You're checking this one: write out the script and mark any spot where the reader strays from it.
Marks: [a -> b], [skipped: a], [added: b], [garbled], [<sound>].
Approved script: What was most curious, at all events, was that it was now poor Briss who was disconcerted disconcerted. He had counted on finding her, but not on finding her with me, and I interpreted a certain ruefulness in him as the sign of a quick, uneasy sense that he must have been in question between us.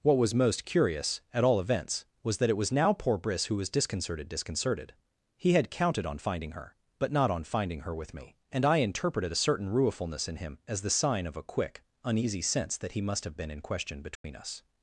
What was most curious, at all events, was that it was now poor Briss who was disconcerted disconcerted. He had counted on finding her, but not on finding her with me, and I interpreted a certain ruefulness in him as the sign of a quick, uneasy sense that he must have been in question between [dropout] us.